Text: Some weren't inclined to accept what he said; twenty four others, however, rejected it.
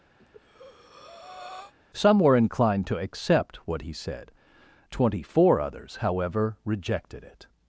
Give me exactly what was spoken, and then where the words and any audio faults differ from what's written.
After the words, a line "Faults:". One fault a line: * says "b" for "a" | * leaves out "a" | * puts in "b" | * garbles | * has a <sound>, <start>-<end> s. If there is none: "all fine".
Some were inclined to accept what he said; twenty four others, however, rejected it.
Faults:
* has a breath, 0.2-1.7 s
* says "were" for "weren't"